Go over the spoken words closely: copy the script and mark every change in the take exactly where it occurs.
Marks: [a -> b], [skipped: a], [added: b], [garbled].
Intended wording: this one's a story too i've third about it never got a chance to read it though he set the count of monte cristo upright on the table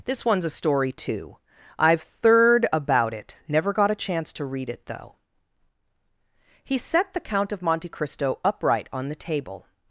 this one's a story too i've third about it never got a chance to read it though he set the count of monte cristo upright on the table